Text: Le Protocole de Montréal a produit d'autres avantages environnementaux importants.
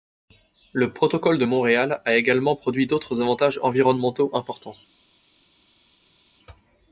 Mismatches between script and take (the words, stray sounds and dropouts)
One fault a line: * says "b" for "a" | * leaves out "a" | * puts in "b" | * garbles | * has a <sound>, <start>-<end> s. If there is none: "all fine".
* puts in "également"